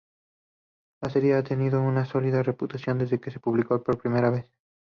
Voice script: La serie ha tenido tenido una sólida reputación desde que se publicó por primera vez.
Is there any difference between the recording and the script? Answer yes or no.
yes